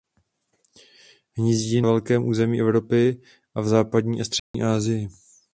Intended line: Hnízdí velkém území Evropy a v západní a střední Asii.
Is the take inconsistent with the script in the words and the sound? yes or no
yes